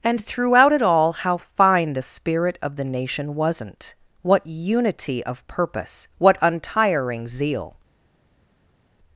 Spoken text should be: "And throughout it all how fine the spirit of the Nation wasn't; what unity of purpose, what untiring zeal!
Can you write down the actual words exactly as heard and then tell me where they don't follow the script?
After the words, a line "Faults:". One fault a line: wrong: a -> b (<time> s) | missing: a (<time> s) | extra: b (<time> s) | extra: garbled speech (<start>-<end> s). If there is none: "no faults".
"And throughout it all how fine the spirit of the Nation wasn't; what unity of purpose, what untiring zeal!
Faults:
no faults